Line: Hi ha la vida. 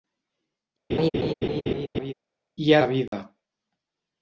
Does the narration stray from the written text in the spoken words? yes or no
no